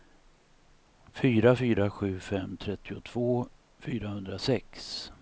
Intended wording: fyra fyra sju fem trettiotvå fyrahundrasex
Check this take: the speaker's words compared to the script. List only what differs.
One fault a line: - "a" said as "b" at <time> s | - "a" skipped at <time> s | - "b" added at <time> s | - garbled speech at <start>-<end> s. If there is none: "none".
none